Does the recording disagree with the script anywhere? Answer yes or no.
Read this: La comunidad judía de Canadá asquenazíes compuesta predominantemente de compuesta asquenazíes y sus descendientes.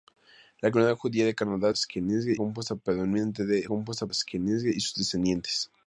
no